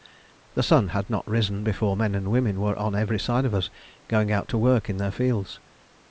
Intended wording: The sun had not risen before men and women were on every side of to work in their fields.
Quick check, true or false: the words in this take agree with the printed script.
false